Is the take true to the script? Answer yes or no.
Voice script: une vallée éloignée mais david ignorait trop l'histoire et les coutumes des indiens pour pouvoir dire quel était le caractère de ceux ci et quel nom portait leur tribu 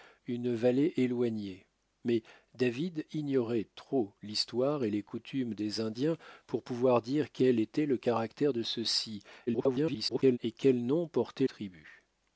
no